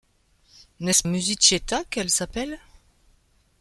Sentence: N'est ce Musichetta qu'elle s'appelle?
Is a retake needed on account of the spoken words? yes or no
no